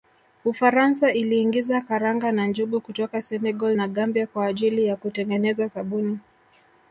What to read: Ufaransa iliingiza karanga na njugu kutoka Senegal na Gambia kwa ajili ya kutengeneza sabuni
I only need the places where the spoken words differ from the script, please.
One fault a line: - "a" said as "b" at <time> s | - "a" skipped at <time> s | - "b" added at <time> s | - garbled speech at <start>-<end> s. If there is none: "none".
none